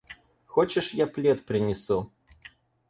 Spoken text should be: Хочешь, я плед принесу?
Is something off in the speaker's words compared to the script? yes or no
no